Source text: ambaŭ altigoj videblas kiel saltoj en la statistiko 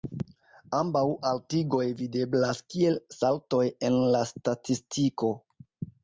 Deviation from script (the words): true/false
false